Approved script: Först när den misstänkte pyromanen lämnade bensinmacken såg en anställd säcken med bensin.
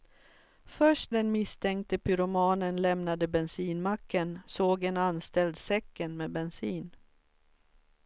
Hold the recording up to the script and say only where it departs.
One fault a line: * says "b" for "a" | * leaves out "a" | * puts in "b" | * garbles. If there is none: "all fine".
* leaves out "när"